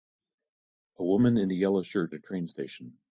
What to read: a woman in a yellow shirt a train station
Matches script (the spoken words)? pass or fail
pass